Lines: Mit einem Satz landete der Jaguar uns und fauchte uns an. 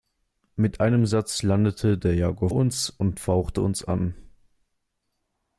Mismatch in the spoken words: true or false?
false